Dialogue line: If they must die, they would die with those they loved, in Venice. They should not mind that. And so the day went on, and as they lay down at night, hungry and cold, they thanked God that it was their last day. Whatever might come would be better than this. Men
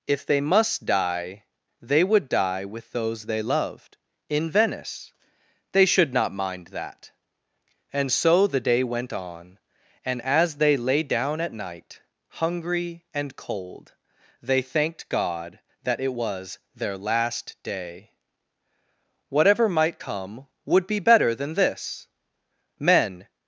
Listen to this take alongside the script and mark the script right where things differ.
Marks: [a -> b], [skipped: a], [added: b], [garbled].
If they must die, they would die with those they loved, in Venice. They should not mind that. And so the day went on, and as they lay down at night, hungry and cold, they thanked God that it was their last day. Whatever might come would be better than this. Men